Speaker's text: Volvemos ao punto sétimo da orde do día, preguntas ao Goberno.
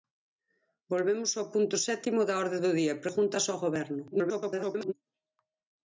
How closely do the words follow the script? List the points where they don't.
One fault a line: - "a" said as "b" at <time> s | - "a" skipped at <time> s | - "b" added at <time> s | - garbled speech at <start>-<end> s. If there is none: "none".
- garbled speech at 4.1-4.9 s